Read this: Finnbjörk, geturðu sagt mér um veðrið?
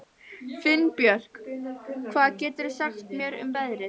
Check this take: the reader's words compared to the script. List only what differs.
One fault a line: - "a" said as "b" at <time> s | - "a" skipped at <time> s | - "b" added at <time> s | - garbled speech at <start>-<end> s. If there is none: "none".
- "hvað" added at 2.1 s